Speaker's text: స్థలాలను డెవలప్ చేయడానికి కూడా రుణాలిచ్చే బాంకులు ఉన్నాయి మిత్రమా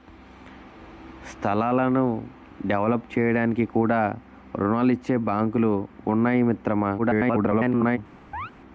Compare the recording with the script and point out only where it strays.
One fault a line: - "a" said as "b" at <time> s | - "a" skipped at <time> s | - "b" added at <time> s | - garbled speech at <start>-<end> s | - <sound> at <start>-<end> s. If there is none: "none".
- garbled speech at 7.0-8.0 s
- chirp at 8.3-8.5 s